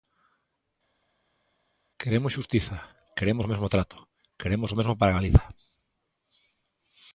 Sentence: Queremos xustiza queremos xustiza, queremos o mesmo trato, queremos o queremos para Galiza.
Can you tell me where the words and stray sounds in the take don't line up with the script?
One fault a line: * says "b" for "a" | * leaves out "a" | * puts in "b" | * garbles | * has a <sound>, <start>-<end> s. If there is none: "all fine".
* leaves out "xustiza queremos"
* says "mesmo" for "queremos"